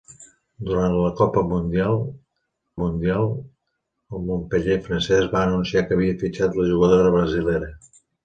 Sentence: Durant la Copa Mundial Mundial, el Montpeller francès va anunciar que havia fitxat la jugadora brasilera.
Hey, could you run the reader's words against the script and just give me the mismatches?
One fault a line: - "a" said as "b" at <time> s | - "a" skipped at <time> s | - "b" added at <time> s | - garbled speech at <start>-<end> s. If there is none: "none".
none